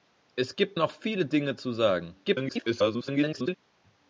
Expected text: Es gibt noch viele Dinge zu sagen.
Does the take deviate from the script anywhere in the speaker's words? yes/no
yes